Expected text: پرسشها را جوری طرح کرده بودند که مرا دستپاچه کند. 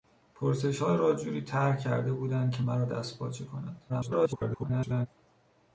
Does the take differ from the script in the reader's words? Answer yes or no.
yes